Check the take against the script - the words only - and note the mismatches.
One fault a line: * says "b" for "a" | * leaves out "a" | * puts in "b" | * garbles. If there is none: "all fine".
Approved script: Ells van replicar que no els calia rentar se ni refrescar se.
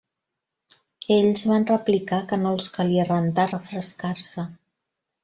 * leaves out "se ni"